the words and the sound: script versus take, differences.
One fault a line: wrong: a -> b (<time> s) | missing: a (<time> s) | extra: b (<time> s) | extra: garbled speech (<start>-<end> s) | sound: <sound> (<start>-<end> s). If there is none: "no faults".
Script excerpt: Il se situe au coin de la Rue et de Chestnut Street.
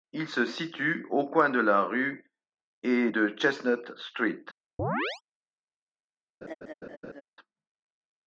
sound: chirp (4.8-5.2 s)
sound: laugh (6.4-7.2 s)